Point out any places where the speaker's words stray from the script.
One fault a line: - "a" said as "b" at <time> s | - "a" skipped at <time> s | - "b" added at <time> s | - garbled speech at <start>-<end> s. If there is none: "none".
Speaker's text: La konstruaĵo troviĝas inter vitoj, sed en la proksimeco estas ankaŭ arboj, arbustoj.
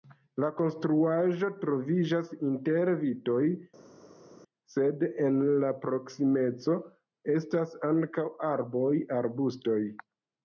none